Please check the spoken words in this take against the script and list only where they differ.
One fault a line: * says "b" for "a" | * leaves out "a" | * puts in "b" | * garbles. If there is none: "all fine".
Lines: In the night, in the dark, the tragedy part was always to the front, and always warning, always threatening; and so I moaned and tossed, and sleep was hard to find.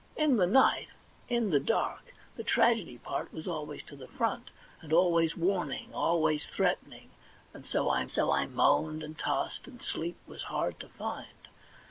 * puts in "so I"